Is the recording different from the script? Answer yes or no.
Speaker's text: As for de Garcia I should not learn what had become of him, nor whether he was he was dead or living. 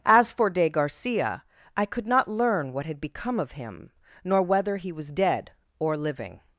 yes